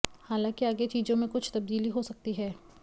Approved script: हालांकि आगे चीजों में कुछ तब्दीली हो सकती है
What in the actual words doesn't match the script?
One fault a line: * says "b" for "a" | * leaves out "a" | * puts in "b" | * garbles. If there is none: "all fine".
all fine